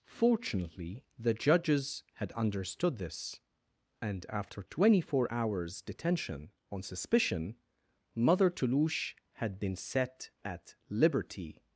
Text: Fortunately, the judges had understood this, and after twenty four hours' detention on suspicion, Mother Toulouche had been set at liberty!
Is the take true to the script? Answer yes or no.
yes